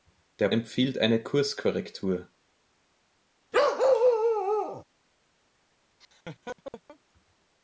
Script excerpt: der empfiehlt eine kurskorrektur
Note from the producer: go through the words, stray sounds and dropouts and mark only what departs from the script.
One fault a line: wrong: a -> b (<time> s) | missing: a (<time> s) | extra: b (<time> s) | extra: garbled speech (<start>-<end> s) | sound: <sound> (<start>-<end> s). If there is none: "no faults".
sound: bark (3.5-4.8 s)
sound: laugh (6.0-7.0 s)